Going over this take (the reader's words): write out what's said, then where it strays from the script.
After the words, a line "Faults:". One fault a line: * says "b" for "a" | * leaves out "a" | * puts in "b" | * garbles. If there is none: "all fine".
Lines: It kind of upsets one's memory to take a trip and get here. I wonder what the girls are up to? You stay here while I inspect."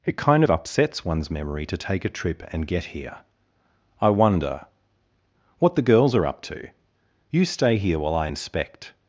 It kind of upsets one's memory to take a trip and get here. I wonder what the girls are up to? You stay here while I inspect."
Faults:
all fine